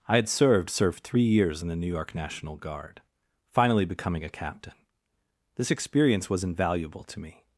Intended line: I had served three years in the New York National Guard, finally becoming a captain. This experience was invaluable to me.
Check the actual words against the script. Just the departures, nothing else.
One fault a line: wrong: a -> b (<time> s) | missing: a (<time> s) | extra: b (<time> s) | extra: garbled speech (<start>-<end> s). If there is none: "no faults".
extra: served (0.7 s)